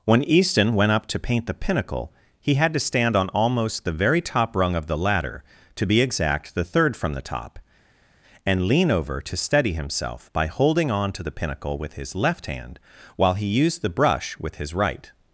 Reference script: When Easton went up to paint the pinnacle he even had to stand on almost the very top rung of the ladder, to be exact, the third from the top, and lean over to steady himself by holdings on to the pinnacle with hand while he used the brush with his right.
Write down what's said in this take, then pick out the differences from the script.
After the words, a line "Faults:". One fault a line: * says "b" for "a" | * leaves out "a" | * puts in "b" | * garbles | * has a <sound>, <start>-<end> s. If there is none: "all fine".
When Easton went up to paint the pinnacle he had to stand on almost the very top rung of the ladder, to be exact, the third from the top, and lean over to steady himself by holding on to the pinnacle with his left hand while he used the brush with his right.
Faults:
* leaves out "even"
* says "holding" for "holdings"
* puts in "his left"